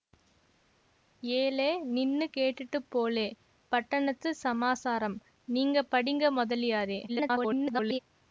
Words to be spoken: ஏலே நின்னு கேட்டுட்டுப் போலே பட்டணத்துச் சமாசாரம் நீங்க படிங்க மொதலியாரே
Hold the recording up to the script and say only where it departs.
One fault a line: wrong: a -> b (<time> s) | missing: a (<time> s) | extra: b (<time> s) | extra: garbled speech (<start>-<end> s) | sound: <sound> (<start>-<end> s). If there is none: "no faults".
extra: garbled speech (7.1-8.0 s)